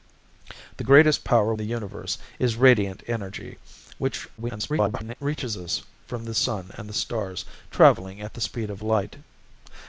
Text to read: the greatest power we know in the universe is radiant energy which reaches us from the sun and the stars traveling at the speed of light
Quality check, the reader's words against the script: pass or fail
fail